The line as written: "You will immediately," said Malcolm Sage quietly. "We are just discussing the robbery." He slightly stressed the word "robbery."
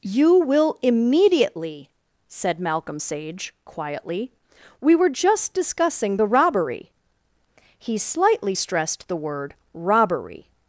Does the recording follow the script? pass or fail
fail